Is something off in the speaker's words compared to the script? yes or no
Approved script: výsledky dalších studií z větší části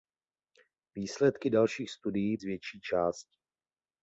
no